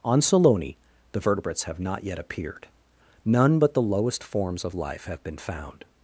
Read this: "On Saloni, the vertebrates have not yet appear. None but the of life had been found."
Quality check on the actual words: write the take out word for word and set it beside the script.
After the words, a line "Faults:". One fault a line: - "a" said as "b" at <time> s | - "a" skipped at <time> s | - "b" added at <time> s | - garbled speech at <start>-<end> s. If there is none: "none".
"On Saloni, the vertebrates have not yet appeared. None but the lowest forms of life have been found."
Faults:
- "appear" said as "appeared" at 2.2 s
- "lowest forms" added at 3.8 s
- "had" said as "have" at 5.1 s